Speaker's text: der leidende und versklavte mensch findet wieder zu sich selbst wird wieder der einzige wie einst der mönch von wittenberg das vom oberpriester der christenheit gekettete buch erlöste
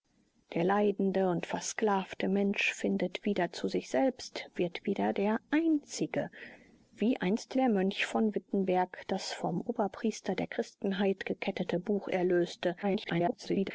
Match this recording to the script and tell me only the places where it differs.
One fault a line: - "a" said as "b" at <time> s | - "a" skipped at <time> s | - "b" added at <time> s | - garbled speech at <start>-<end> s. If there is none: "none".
- garbled speech at 12.8-13.7 s